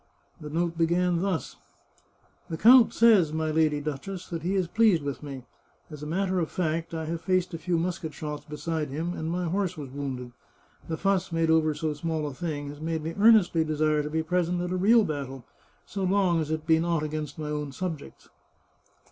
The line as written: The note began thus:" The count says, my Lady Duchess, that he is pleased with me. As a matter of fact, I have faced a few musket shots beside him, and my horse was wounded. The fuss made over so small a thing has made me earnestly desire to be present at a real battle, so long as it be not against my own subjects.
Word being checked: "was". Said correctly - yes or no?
yes